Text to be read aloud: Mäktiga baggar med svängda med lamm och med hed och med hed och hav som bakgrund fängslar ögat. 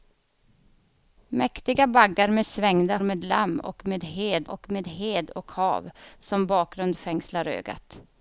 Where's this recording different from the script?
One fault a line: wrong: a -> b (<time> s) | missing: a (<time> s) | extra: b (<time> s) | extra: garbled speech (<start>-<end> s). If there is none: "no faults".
no faults